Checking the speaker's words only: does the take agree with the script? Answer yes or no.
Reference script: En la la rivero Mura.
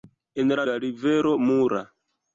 yes